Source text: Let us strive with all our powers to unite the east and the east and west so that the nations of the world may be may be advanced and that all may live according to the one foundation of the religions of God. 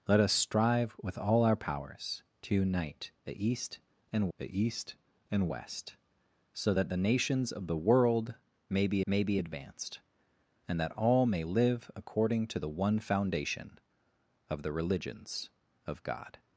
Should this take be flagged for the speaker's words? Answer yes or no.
no